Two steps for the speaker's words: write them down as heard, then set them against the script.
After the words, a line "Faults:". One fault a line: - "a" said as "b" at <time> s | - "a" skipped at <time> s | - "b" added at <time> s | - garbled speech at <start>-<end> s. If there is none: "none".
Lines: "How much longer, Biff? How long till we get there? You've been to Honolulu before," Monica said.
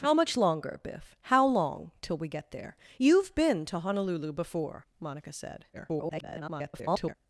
"How much longer, Biff? How long till we get there? You've been to Honolulu before," Monica said. [garbled]
Faults:
- garbled speech at 5.7-7.1 s